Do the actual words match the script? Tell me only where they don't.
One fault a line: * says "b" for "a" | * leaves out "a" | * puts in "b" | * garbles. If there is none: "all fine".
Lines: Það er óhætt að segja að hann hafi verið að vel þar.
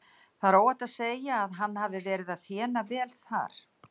* puts in "þéna"